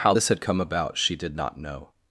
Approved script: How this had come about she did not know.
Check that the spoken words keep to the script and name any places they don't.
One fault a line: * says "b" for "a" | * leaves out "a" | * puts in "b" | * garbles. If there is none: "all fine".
all fine